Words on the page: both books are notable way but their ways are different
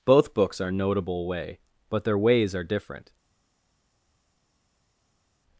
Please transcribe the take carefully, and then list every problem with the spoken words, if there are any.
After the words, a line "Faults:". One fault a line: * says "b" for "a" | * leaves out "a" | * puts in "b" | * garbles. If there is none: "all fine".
both books are notable way but their ways are different
Faults:
all fine